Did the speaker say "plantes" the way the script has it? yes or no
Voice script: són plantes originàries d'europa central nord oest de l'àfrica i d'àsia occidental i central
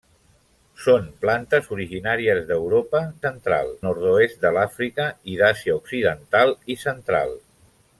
yes